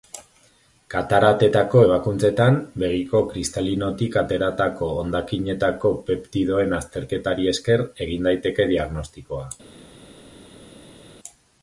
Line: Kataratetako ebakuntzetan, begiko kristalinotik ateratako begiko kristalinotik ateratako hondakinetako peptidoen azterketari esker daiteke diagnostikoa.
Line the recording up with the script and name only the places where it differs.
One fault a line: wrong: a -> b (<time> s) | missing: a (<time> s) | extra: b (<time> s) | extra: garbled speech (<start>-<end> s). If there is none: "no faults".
missing: begiko kristalinotik ateratako (4.9 s)
extra: egin (8.1 s)